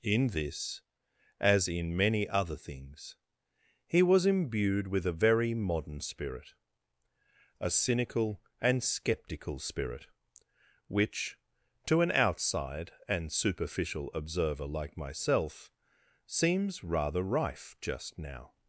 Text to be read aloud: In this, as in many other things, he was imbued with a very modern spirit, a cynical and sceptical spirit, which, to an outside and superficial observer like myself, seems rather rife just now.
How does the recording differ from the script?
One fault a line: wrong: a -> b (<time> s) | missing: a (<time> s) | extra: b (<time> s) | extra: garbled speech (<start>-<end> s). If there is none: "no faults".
no faults